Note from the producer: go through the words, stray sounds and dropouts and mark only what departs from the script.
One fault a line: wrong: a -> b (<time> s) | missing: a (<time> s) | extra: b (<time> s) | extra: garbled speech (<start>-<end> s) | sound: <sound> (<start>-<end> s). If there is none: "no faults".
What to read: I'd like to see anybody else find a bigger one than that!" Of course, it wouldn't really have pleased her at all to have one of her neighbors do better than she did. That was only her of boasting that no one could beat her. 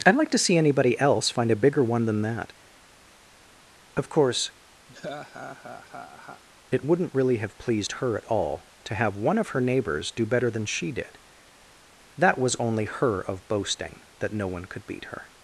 sound: laugh (4.9-6.4 s)